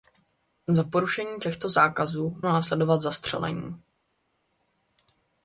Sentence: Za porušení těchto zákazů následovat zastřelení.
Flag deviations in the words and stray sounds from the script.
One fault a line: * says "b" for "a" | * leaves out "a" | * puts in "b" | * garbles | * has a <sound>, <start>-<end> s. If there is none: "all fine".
all fine